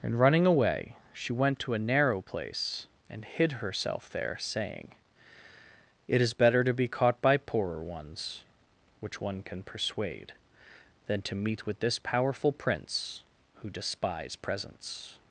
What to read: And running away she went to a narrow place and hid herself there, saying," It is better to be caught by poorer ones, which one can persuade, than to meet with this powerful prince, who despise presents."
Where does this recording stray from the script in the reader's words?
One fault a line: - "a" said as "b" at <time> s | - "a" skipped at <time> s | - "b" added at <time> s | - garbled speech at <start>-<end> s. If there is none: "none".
none